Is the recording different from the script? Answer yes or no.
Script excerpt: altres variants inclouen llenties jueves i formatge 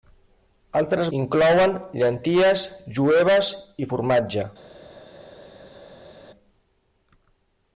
yes